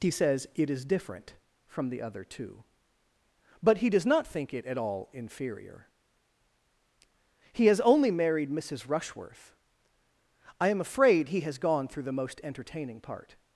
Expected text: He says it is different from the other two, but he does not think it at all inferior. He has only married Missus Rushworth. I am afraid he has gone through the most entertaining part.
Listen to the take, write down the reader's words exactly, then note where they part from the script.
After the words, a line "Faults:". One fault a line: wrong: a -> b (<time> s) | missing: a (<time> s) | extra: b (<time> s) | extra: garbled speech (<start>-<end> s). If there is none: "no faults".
He says it is different from the other two, but he does not think it at all inferior. He has only married Missus Rushworth. I am afraid he has gone through the most entertaining part.
Faults:
no faults